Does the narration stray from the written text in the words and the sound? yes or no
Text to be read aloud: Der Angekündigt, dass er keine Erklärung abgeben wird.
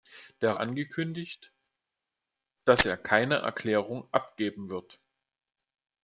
no